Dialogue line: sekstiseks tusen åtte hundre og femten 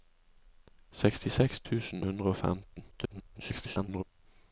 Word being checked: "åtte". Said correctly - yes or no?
no